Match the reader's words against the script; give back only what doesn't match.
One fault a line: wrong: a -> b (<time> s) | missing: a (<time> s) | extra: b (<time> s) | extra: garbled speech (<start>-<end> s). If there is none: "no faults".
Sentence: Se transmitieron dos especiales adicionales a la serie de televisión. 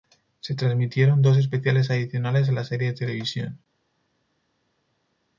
no faults